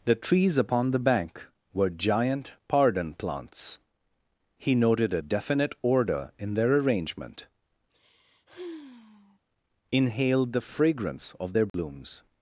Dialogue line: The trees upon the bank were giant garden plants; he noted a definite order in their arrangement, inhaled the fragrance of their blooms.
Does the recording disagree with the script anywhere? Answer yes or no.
yes